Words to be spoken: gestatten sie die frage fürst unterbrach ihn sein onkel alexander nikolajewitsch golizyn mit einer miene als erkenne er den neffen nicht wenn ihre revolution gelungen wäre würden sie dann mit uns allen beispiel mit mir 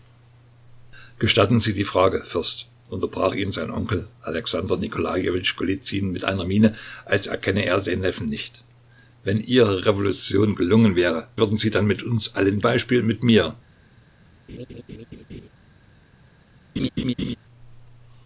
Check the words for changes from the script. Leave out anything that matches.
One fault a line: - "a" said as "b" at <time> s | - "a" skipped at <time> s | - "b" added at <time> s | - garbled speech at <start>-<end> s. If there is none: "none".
none